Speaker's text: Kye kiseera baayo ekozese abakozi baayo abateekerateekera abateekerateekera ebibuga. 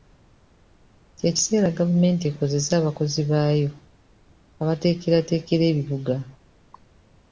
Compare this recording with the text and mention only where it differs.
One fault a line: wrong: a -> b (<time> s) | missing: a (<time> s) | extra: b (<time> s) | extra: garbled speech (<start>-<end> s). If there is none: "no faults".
wrong: baayo -> gavumenti (1.8 s)
missing: abateekerateekera (5.6 s)